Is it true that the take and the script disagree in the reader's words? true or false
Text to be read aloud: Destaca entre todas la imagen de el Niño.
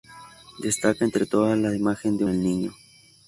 false